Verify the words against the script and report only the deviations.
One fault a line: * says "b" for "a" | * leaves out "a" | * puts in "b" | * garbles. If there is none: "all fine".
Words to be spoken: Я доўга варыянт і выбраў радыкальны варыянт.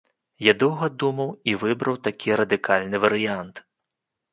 * says "думаў" for "варыянт"
* puts in "такі"